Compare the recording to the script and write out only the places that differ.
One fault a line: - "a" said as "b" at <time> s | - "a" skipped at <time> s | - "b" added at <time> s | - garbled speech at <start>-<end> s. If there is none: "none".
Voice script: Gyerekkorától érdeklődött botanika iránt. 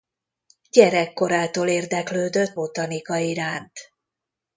none